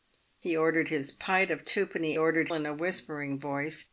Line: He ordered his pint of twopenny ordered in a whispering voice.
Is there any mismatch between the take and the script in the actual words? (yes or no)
no